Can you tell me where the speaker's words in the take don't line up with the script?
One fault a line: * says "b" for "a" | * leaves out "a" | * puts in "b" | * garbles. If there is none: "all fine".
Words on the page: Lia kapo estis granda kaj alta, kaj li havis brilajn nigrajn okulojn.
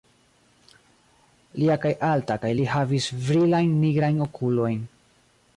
* leaves out "kapo estis granda"